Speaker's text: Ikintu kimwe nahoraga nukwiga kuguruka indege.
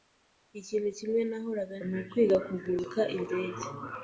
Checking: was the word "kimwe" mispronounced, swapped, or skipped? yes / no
no